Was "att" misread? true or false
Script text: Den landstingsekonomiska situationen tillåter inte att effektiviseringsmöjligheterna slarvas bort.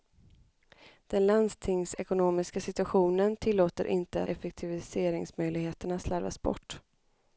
true